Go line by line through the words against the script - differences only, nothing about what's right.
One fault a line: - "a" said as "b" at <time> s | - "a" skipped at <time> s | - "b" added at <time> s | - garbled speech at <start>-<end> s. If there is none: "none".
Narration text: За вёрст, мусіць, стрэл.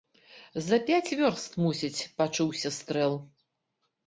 - "пяць" added at 0.9 s
- "пачуўся" added at 2.2 s